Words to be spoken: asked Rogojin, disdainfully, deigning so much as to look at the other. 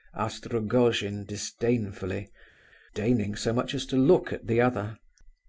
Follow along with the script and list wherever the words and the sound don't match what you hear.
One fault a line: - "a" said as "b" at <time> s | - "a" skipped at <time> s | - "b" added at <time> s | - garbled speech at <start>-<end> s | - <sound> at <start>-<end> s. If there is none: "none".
none